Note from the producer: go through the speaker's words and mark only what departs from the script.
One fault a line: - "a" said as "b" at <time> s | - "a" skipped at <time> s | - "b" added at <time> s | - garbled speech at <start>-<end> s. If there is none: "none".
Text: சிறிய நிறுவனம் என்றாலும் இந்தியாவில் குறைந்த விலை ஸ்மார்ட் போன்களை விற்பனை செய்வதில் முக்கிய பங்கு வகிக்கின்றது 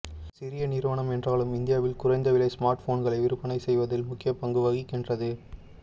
none